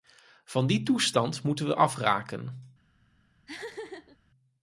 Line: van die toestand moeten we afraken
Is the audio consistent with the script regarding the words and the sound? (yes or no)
no